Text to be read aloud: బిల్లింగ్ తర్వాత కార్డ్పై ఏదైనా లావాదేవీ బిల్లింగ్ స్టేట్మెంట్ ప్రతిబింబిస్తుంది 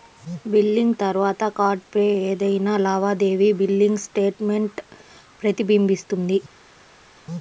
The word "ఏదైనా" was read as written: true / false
true